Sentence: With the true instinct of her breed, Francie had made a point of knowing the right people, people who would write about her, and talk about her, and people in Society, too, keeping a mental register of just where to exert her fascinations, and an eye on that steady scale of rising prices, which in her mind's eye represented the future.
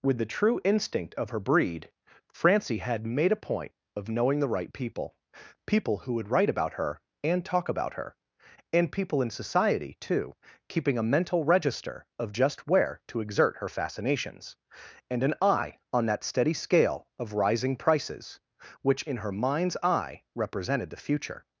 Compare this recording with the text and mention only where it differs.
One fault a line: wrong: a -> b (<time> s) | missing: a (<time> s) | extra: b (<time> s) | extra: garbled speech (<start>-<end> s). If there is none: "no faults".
no faults